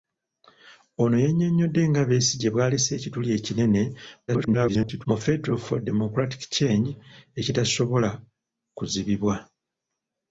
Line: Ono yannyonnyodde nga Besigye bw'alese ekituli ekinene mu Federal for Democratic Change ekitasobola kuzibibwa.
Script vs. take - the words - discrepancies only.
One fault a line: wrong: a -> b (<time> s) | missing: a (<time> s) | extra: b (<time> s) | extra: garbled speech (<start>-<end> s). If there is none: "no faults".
extra: garbled speech (4.3-5.1 s)